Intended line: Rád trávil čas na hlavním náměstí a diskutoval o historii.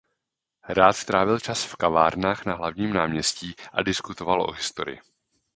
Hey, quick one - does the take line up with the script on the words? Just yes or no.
no